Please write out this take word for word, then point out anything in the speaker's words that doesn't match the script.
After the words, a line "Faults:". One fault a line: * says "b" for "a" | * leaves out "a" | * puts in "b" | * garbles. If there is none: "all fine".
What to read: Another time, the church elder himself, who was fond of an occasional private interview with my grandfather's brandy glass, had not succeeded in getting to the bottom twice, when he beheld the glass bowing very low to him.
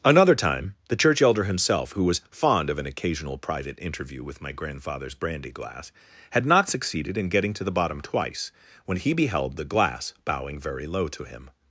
Another time, the church elder himself, who was fond of an occasional private interview with my grandfather's brandy glass, had not succeeded in getting to the bottom twice, when he beheld the glass bowing very low to him.
Faults:
all fine